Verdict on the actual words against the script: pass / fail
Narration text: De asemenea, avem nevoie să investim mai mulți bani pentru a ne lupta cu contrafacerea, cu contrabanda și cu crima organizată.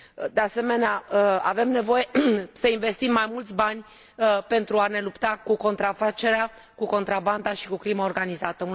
pass